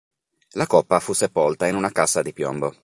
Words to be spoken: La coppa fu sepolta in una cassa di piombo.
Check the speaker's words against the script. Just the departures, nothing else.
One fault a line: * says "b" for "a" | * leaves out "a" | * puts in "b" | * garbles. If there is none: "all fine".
all fine